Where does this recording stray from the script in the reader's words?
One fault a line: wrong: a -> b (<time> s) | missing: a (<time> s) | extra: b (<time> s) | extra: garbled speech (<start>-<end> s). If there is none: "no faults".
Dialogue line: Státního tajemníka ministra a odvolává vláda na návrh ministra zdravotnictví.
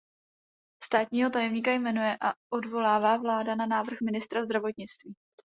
wrong: ministra -> jmenuje (1.7 s)